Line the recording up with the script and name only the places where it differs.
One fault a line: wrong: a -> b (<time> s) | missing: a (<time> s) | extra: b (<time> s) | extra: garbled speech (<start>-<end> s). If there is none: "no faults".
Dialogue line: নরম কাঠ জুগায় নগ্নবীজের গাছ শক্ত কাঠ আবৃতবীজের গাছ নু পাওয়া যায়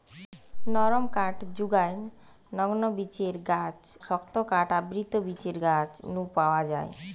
no faults